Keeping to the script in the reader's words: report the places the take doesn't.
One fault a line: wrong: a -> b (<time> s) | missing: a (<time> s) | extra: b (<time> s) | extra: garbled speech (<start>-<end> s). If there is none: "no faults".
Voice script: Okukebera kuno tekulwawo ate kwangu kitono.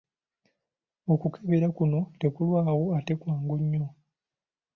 wrong: kitono -> nnyo (3.6 s)